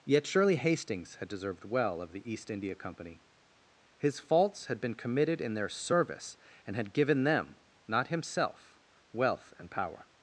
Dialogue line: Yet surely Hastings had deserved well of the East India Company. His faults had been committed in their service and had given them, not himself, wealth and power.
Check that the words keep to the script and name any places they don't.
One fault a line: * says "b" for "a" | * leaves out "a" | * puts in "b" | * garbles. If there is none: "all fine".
all fine